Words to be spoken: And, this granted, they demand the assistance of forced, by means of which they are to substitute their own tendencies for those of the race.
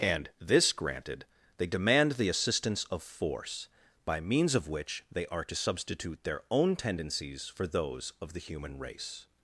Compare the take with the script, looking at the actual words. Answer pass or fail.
fail